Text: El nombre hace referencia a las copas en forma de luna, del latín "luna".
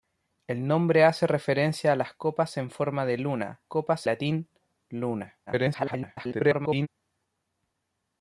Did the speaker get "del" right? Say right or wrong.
wrong